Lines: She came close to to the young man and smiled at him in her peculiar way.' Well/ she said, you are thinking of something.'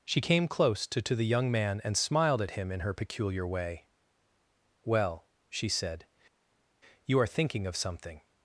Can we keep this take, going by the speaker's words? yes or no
yes